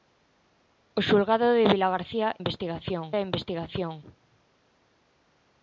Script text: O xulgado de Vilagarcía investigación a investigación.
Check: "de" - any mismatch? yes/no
no